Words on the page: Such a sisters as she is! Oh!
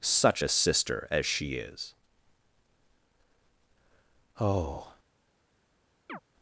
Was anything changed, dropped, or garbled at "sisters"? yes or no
yes